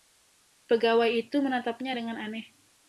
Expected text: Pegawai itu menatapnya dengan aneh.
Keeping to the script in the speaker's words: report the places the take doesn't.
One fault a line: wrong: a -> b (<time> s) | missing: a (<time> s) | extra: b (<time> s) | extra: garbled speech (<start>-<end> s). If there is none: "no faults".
no faults